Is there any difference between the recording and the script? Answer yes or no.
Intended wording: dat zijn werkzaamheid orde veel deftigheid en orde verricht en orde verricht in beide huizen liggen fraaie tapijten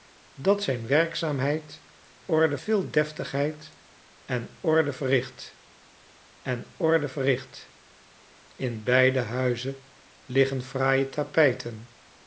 no